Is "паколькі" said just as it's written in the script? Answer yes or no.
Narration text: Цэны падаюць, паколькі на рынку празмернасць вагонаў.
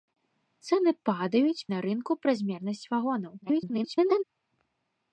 no